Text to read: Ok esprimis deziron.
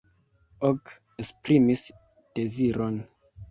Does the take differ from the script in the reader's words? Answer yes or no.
no